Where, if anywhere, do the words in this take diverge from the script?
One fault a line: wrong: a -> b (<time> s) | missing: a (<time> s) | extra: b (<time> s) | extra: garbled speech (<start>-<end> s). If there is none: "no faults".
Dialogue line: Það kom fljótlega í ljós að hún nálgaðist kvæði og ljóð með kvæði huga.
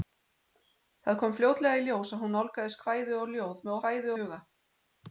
no faults